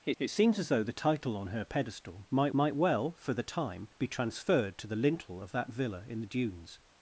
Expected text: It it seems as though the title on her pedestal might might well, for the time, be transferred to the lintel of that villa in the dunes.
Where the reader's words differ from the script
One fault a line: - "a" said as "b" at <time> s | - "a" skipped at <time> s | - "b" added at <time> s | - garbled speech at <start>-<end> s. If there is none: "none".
none